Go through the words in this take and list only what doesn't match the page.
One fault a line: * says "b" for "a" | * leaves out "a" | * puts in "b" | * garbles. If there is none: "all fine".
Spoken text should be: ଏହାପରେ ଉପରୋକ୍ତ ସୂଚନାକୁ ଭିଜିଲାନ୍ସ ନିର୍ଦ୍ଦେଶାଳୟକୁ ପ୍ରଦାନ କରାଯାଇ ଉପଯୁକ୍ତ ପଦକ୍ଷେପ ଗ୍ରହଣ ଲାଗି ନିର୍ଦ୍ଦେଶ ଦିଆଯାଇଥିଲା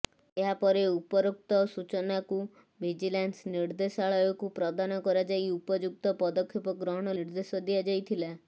* leaves out "ଲାଗି"